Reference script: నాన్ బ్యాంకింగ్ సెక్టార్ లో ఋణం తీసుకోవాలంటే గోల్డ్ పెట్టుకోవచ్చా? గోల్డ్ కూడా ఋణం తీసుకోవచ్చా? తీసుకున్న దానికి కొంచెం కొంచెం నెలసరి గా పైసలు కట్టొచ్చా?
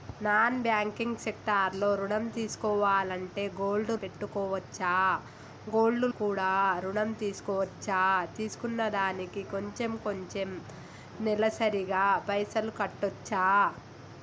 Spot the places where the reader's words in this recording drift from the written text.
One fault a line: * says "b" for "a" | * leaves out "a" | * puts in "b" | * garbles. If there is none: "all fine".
all fine